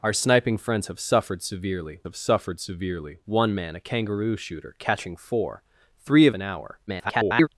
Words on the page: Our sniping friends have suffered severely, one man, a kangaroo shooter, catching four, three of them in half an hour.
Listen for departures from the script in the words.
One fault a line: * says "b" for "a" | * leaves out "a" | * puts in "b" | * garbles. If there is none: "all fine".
* puts in "have suffered severely"
* leaves out "them in half"
* garbles